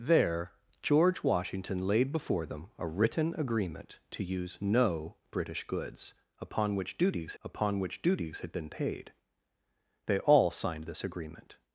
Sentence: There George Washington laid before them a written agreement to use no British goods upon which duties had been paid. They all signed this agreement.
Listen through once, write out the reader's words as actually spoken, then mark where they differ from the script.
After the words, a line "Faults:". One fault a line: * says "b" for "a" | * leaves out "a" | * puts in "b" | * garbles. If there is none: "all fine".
There George Washington laid before them a written agreement to use no British goods upon which duties upon which duties had been paid. They all signed this agreement.
Faults:
* puts in "upon which duties"